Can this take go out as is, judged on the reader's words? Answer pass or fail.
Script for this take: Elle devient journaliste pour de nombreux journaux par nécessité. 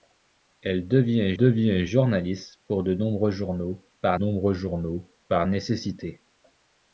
fail